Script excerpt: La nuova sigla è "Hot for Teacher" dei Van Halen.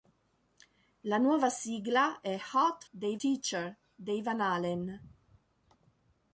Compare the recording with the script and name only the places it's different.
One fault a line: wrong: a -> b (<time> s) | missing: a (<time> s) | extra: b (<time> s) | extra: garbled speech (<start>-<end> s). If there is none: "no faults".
wrong: for -> dei (2.9 s)